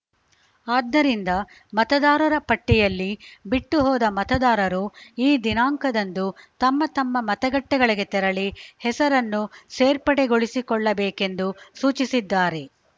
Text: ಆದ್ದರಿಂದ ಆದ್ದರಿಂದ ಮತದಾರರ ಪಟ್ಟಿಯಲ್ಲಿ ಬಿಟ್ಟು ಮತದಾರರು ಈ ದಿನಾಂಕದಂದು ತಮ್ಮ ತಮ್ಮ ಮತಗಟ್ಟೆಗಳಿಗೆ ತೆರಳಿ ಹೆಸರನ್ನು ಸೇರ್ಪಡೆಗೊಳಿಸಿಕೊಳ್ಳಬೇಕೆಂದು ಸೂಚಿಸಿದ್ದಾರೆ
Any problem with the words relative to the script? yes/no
yes